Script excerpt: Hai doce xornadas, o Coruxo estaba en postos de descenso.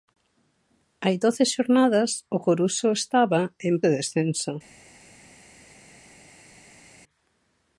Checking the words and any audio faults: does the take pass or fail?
fail